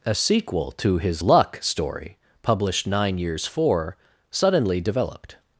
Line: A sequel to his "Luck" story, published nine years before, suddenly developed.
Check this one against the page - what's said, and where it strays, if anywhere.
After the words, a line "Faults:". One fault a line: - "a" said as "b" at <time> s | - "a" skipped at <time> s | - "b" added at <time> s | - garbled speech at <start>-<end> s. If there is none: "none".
A sequel to his "Luck" story, published nine years for, suddenly developed.
Faults:
- "before" said as "for" at 3.5 s